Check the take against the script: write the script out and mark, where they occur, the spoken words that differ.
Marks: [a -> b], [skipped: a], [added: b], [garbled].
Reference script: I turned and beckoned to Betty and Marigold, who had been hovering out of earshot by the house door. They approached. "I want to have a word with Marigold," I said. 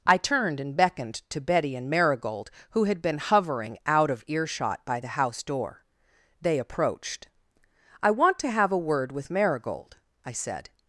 I turned and beckoned to Betty and Marigold, who had been hovering out of earshot by the house door. They approached. "I want to have a word with Marigold," I said.